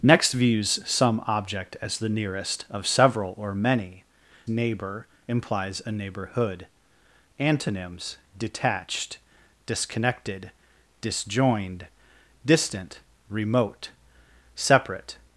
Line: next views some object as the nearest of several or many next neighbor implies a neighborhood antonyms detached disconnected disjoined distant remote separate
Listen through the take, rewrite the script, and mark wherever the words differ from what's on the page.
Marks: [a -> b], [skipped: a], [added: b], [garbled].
next views some object as the nearest of several or many [skipped: next] neighbor implies a neighborhood antonyms detached disconnected disjoined distant remote separate